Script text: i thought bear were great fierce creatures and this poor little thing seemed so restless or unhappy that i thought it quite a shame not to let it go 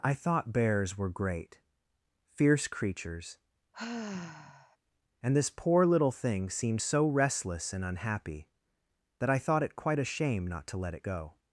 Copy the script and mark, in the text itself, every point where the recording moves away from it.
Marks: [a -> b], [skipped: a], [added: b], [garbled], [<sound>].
i thought [bear -> bears] were great fierce creatures [sigh] and this poor little thing seemed so restless [or -> and] unhappy that i thought it quite a shame not to let it go